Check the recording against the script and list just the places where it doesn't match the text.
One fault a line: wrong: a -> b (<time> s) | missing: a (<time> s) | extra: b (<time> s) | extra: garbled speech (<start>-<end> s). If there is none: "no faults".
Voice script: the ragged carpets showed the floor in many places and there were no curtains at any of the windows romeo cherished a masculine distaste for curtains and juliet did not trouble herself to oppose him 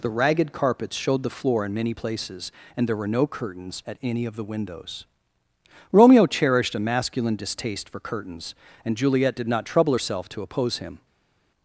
no faults